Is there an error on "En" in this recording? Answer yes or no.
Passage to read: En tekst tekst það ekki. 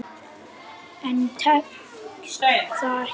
no